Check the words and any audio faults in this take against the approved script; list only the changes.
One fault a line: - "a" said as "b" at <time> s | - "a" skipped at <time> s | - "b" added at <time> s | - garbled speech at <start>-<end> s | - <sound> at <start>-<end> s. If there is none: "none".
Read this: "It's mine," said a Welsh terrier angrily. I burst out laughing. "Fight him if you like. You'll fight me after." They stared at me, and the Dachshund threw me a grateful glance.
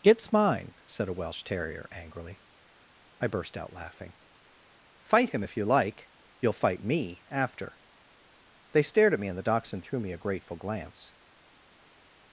none